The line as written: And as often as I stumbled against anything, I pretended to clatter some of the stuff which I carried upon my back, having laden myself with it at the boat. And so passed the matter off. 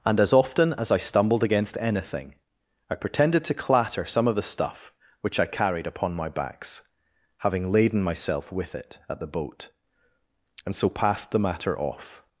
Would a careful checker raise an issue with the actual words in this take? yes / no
yes